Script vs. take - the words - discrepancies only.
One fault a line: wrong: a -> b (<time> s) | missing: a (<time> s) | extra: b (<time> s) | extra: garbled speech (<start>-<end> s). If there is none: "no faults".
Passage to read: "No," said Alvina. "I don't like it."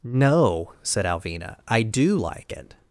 wrong: don't -> do (1.8 s)